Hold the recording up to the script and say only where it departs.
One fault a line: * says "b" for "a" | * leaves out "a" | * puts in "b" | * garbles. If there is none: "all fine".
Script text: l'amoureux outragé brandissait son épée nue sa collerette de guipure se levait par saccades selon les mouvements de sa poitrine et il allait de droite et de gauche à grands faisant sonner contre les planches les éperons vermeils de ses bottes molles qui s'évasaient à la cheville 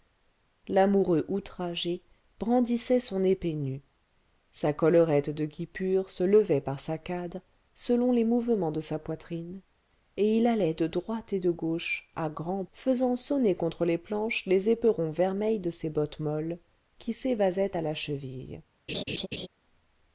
all fine